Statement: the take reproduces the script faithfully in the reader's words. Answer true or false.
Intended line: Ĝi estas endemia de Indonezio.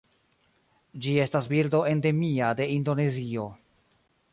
false